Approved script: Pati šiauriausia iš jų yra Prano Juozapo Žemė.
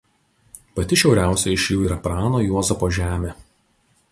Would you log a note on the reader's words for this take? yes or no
no